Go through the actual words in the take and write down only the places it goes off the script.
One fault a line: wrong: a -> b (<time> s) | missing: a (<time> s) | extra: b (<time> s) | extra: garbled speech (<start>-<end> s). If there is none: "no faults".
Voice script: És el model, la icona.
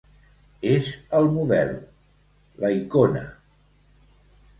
no faults